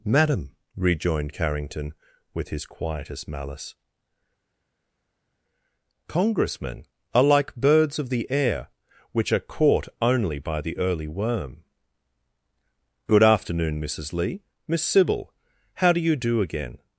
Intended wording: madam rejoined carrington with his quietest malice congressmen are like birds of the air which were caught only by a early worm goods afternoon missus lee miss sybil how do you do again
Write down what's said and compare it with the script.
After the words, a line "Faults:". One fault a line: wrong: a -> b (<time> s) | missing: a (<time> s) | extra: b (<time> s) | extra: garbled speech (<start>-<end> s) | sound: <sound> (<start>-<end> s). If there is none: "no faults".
madam rejoined carrington with his quietest malice congressmen are like birds of the air which are caught only by the early worm good afternoon missus lee miss sybil how do you do again
Faults:
wrong: were -> are (9.3 s)
wrong: a -> the (10.6 s)
wrong: goods -> good (13.1 s)